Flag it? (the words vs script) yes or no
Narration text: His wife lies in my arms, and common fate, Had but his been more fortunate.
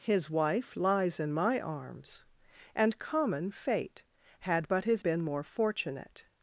no